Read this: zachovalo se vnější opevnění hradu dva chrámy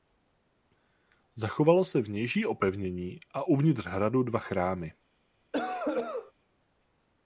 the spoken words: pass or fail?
fail